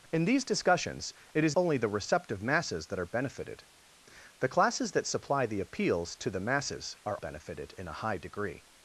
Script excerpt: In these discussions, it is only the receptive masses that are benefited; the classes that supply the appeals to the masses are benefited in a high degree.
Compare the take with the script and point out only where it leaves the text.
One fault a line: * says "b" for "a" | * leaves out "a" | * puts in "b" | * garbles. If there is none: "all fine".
all fine